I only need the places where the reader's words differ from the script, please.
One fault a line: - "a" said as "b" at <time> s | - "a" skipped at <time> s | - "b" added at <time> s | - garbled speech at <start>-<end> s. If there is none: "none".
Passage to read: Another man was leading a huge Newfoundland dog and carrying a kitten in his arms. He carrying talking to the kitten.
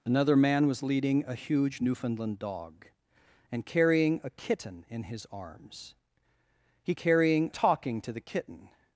none